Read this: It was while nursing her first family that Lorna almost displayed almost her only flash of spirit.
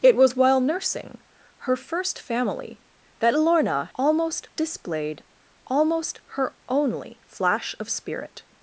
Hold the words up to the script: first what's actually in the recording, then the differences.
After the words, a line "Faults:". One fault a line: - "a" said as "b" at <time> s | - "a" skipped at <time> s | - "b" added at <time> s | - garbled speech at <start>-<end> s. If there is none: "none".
It was while nursing her first family that Lorna almost displayed almost her only flash of spirit.
Faults:
none